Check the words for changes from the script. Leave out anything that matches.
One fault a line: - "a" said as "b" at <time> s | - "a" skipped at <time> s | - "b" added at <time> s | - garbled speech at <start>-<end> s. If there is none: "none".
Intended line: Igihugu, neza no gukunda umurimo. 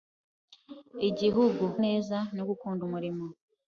none